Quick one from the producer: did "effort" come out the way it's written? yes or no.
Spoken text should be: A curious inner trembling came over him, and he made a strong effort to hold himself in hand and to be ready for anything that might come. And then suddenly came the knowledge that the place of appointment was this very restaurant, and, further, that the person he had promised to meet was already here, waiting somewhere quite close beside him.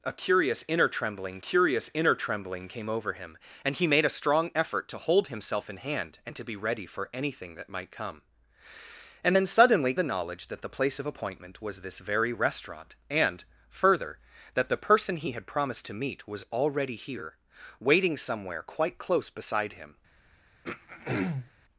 yes